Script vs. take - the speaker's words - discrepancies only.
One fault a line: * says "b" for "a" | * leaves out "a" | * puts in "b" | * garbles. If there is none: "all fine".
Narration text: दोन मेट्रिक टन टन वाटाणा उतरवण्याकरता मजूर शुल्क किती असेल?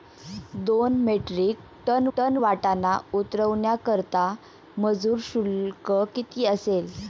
all fine